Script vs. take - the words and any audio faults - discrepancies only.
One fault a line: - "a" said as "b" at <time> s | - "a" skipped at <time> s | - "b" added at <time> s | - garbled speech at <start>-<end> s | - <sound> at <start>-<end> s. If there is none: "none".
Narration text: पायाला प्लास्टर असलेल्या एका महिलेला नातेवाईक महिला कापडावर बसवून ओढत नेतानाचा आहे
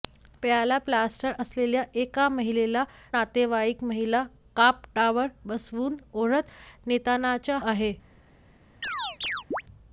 - chirp at 8.8-9.6 s